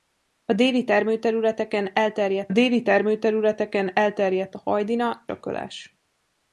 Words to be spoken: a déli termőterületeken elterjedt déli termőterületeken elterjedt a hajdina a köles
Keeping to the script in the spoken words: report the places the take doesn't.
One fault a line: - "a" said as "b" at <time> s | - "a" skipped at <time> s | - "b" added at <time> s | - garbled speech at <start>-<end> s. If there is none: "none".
none